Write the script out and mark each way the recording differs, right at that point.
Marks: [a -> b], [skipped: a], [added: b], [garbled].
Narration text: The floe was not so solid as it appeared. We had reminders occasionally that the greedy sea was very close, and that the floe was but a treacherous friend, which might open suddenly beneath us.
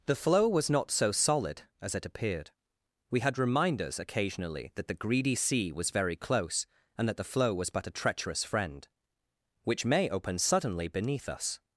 The floe was not so solid as it appeared. We had reminders occasionally that the greedy sea was very close, and that the floe was but a treacherous friend, which [might -> may] open suddenly beneath us.